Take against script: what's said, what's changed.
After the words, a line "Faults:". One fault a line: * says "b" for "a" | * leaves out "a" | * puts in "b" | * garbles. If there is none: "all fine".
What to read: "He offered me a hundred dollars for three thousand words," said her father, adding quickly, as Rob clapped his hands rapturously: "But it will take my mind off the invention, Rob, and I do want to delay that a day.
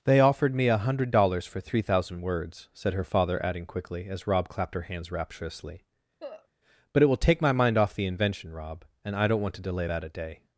"They offered me a hundred dollars for three thousand words," said her father, adding quickly, as Rob clapped her hands rapturously: "But it will take my mind off the invention, Rob, and I don't want to delay that a day.
Faults:
* says "They" for "He"
* says "her" for "his"
* says "don't" for "do"